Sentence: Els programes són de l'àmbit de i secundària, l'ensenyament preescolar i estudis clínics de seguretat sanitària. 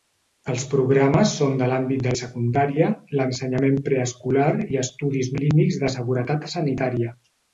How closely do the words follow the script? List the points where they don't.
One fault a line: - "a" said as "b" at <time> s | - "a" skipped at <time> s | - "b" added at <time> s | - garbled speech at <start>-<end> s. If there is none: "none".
none